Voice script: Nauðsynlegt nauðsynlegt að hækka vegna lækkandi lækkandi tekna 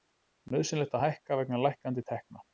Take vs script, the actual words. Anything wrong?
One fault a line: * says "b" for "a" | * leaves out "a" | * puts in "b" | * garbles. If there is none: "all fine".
* leaves out "nauðsynlegt"
* leaves out "lækkandi"